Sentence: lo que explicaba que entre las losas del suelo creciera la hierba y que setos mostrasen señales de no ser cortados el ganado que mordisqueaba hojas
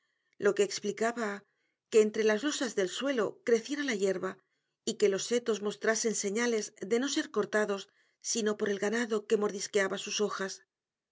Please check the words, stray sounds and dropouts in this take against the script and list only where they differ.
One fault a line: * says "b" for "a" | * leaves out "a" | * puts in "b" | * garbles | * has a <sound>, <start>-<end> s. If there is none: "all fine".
* puts in "los"
* puts in "sino por"
* puts in "sus"